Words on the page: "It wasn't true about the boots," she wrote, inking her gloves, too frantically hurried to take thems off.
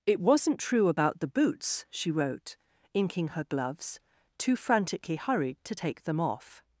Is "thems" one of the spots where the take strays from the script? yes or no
yes